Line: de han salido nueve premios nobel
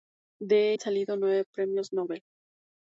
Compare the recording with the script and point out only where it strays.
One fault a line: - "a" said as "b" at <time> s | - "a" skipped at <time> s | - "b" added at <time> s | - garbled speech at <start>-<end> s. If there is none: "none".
none